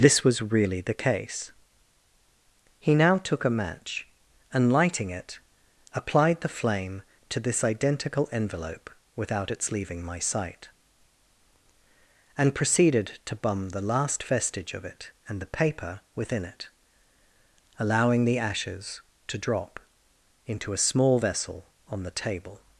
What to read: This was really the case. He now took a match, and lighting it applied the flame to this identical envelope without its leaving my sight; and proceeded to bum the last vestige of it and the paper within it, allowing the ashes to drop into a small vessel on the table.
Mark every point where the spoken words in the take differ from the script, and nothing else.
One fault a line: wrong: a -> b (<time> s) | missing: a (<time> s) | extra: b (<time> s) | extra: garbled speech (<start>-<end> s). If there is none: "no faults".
no faults